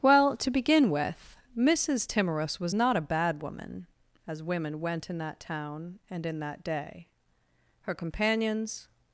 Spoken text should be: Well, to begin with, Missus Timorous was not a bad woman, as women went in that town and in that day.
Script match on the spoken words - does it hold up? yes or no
no